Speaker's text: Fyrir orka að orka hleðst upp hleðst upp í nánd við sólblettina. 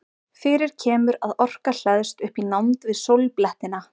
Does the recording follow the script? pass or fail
fail